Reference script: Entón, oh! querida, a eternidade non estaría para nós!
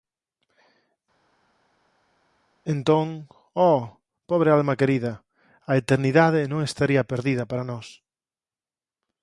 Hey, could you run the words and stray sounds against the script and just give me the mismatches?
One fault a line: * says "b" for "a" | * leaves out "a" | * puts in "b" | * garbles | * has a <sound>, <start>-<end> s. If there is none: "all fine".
* puts in "pobre alma"
* puts in "perdida"